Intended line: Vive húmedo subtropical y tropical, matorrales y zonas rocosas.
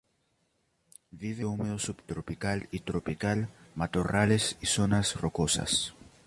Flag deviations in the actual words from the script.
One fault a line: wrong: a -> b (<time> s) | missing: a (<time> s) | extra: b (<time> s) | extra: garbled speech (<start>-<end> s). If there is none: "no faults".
no faults